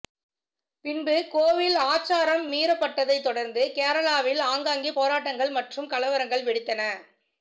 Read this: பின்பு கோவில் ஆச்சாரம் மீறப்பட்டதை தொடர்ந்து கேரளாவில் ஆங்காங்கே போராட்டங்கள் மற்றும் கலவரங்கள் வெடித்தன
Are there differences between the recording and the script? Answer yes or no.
no